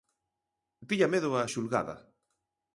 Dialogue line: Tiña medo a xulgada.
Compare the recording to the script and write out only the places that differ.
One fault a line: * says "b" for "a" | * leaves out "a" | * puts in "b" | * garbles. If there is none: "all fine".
all fine